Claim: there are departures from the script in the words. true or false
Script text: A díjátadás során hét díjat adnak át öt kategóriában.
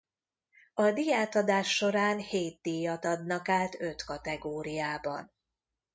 false